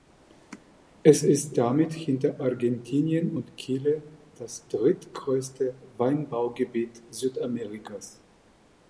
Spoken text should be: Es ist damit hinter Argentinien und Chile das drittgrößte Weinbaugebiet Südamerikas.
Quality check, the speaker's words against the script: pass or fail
pass